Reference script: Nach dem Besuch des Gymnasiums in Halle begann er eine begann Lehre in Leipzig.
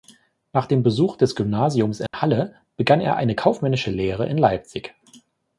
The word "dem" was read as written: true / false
true